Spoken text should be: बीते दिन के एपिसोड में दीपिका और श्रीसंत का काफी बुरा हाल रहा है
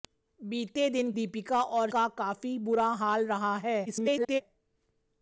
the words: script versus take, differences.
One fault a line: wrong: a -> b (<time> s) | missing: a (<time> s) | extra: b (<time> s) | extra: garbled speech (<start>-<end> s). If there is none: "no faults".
missing: के एपिसोड में (1.1 s)
missing: श्रीसंत (1.9 s)
extra: garbled speech (3.9-4.4 s)